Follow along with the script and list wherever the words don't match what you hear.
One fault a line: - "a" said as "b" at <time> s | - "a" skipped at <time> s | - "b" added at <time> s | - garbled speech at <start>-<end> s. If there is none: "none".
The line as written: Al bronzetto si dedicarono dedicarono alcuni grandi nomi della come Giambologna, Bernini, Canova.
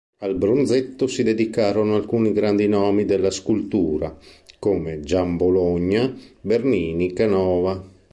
- "dedicarono" skipped at 2.0 s
- "scultura" added at 3.3 s